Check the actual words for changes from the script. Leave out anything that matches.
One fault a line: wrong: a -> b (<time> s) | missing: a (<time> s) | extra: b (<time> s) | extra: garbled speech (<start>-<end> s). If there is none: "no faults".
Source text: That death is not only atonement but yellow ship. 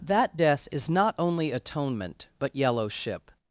no faults